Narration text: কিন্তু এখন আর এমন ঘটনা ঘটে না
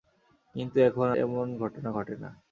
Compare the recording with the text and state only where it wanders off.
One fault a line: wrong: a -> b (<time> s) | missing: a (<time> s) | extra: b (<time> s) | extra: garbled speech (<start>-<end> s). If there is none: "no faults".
missing: আর (1.1 s)